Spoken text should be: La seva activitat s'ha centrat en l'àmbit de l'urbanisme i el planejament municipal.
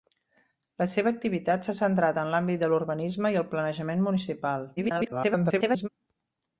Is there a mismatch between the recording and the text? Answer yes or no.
yes